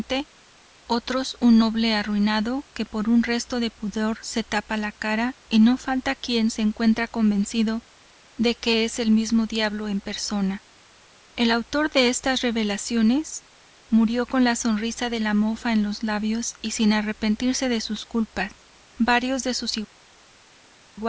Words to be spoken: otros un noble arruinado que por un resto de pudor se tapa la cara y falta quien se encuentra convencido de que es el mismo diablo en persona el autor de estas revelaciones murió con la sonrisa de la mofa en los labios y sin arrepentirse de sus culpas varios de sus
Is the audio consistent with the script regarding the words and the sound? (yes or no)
no